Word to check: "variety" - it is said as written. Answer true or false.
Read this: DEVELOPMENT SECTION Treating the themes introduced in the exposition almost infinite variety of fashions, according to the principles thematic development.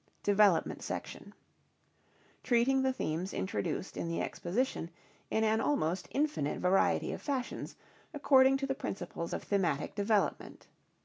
true